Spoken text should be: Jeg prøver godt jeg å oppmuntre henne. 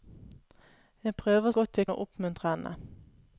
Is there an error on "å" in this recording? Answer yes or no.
no